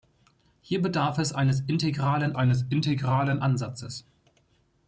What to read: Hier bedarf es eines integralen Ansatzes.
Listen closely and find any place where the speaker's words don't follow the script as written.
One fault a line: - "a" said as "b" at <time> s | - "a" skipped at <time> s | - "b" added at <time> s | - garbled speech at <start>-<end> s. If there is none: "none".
- "eines integralen" added at 2.3 s